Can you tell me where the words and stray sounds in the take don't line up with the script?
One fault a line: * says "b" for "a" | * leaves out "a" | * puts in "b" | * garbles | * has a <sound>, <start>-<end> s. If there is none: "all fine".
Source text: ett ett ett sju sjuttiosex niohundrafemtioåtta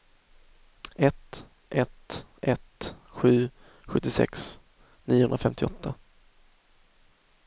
all fine